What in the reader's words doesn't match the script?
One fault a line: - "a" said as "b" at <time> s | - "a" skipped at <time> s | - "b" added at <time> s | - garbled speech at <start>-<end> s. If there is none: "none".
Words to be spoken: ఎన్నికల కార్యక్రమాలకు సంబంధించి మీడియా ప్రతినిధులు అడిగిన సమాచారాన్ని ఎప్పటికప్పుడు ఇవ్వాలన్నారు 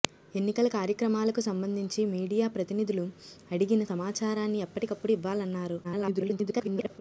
- garbled speech at 5.8-7.0 s